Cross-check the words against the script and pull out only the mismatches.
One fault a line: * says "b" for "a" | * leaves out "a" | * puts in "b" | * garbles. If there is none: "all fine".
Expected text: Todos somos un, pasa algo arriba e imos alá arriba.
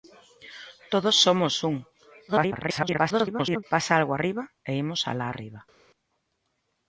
* garbles